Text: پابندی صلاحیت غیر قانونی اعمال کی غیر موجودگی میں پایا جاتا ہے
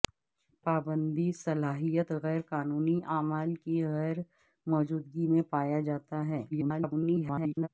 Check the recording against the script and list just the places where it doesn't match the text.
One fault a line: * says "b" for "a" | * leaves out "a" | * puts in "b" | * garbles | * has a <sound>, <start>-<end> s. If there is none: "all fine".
* garbles